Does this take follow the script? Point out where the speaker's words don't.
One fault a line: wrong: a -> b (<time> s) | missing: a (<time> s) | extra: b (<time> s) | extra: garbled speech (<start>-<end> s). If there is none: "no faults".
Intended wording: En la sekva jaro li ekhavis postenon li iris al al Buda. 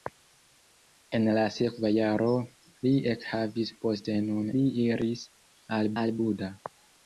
no faults